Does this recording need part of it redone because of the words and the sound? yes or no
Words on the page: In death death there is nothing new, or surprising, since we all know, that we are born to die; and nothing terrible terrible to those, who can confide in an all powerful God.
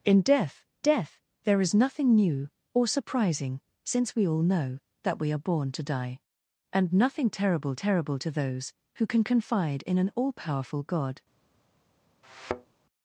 yes